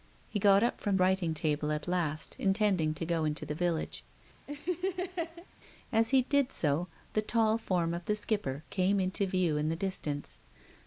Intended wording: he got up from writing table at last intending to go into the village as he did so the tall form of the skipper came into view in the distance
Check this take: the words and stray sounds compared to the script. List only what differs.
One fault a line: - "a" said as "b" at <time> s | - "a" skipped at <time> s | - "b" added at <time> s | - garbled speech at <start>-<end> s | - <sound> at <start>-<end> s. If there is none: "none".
- laugh at 4.5-5.5 s